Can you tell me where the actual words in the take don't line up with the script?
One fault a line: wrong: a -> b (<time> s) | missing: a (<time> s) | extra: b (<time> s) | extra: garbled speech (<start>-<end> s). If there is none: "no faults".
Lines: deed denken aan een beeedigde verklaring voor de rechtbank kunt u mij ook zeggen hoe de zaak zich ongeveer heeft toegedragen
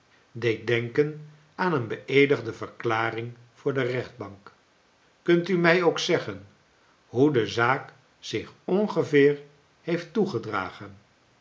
no faults